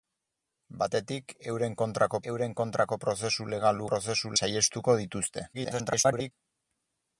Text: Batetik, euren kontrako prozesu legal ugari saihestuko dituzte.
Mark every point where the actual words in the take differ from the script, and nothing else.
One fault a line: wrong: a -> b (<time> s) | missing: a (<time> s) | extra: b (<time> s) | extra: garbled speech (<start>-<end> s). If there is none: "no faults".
extra: euren kontrako (2.3 s)
wrong: ugari -> prozesu (3.9 s)
extra: garbled speech (5.5-6.3 s)